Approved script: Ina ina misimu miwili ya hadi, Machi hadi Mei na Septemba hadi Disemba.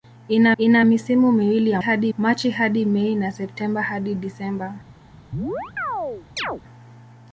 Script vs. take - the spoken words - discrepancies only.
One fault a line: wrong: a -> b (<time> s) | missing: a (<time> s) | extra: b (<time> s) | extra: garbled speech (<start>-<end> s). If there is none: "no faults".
no faults